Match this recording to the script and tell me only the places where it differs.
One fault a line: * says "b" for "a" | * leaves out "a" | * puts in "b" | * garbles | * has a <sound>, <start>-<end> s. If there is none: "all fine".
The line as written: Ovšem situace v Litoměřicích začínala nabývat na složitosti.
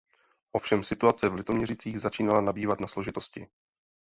all fine